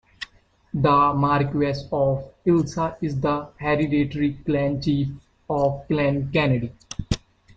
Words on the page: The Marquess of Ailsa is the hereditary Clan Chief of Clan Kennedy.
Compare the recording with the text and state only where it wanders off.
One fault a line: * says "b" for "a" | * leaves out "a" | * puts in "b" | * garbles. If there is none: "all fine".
all fine